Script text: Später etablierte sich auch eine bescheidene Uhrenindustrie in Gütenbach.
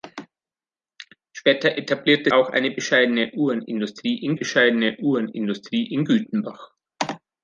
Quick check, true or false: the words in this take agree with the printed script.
false